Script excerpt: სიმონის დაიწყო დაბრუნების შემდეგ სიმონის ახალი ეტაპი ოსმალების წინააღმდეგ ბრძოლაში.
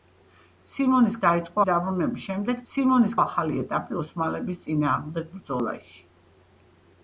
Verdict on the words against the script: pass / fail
pass